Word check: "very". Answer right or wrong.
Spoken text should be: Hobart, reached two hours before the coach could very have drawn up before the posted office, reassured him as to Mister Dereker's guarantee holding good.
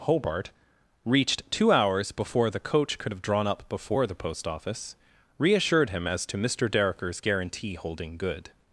wrong